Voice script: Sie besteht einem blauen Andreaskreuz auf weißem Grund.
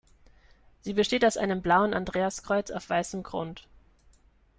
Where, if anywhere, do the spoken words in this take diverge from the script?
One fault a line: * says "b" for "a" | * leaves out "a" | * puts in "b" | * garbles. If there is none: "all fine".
* puts in "aus"